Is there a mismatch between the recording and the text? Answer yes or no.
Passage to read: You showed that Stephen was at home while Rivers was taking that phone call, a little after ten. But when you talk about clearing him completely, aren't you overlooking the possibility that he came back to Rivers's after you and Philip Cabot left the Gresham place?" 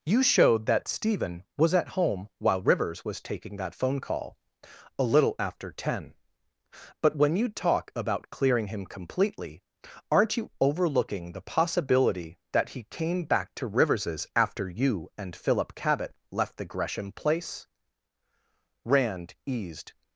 yes